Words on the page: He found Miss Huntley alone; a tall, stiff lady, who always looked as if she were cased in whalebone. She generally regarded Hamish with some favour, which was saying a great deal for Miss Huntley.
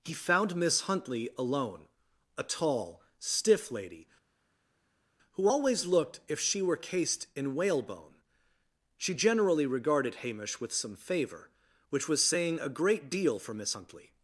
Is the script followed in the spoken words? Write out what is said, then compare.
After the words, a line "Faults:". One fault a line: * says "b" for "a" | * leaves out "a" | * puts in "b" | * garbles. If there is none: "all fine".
He found Miss Huntley alone; a tall, stiff lady, who always looked if she were cased in whalebone. She generally regarded Hamish with some favour, which was saying a great deal for Miss Huntley.
Faults:
* leaves out "as"